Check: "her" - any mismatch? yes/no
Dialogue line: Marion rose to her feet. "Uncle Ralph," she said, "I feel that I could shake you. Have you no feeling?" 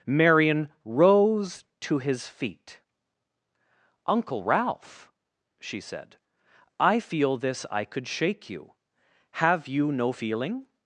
yes